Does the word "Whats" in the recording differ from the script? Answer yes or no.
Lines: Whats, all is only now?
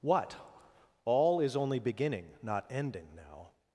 yes